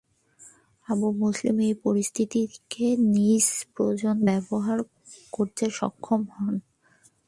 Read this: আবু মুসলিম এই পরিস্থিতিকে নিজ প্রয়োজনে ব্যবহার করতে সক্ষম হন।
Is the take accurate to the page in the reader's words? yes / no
yes